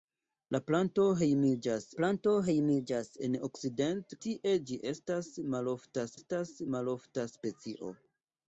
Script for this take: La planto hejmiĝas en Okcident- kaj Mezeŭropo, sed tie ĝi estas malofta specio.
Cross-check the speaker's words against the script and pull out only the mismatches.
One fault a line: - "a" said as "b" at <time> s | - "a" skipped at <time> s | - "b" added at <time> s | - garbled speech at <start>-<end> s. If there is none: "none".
- "planto hejmiĝas" added at 2.0 s
- "kaj Mezeŭropo sed tie ĝi" said as "tie ĝi estas malofta" at 4.3 s